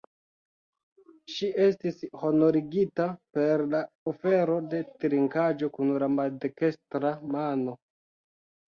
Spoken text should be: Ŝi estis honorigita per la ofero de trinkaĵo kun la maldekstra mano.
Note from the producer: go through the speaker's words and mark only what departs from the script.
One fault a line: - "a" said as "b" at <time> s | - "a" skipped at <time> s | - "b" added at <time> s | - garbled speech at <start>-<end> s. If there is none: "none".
none